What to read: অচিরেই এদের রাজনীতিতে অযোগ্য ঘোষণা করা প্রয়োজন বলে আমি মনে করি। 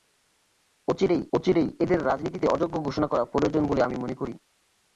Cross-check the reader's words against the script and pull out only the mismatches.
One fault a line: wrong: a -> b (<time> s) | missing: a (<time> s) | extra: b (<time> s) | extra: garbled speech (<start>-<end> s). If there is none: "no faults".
extra: অচিরেই (1.3 s)